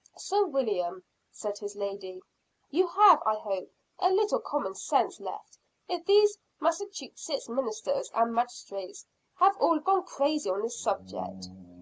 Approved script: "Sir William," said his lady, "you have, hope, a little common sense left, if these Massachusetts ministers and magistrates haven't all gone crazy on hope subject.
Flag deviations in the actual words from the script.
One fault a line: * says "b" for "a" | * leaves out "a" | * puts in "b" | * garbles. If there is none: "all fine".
* puts in "I"
* says "have" for "haven't"
* says "this" for "hope"